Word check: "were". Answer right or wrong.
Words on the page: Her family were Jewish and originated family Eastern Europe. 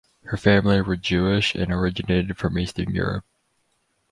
right